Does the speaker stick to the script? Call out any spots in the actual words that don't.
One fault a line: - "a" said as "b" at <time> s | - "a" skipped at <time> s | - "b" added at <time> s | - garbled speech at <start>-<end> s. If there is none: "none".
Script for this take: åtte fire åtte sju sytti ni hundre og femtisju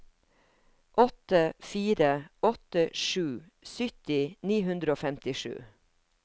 none